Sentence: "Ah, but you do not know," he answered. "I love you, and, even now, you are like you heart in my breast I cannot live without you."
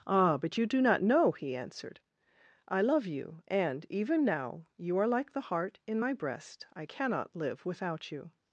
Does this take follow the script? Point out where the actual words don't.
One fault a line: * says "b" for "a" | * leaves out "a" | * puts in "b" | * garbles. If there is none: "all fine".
* says "the" for "you"